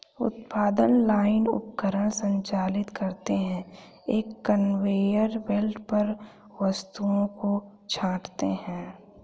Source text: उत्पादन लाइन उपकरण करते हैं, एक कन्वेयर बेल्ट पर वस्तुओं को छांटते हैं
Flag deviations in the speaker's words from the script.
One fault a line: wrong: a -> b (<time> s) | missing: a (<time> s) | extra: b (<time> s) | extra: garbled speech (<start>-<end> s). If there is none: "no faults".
extra: संचालित (2.1 s)